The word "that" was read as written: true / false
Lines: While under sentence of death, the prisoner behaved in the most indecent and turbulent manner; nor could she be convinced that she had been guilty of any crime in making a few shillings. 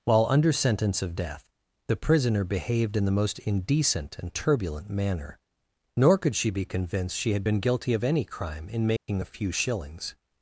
false